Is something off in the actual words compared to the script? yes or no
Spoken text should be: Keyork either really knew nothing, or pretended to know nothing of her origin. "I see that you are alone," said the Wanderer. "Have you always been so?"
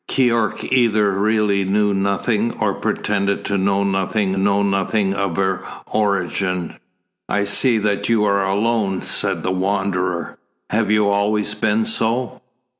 yes